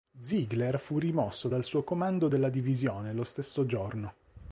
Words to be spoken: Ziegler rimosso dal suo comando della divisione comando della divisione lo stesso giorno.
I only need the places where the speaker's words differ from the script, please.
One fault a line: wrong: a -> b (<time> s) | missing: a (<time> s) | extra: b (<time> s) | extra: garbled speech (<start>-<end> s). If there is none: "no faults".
extra: fu (0.8 s)
missing: comando della divisione (3.1 s)